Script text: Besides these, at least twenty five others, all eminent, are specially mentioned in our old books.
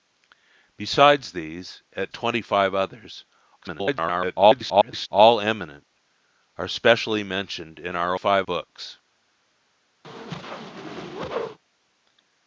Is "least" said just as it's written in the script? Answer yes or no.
no